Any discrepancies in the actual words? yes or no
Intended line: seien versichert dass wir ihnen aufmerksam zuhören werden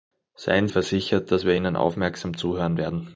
no